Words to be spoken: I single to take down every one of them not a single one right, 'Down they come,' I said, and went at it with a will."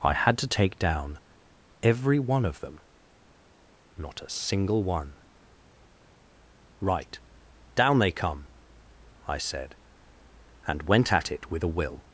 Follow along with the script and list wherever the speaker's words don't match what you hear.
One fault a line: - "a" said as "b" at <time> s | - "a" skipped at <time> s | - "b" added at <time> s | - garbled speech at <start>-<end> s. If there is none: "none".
- "single" said as "had" at 0.1 s